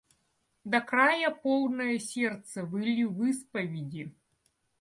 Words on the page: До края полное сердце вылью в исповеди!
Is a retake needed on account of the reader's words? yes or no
no